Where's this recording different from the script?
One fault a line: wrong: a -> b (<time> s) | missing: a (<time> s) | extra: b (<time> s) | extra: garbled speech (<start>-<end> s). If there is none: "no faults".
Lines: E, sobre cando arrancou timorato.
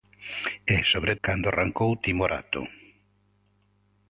no faults